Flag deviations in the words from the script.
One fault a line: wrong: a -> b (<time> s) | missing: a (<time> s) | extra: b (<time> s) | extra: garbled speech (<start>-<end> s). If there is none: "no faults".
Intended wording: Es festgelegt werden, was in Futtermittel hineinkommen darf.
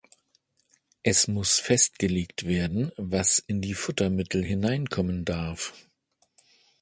extra: muss (1.3 s)
extra: die (3.6 s)